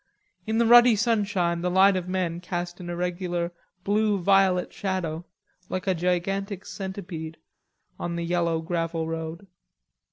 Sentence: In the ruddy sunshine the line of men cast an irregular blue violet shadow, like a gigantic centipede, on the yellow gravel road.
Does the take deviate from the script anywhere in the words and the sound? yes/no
no